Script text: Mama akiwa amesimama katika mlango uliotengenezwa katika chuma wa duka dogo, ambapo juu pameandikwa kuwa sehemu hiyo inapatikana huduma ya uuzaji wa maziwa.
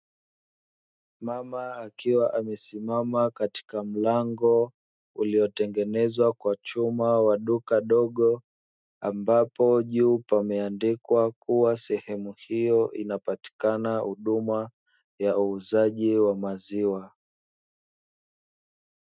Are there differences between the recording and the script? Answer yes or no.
yes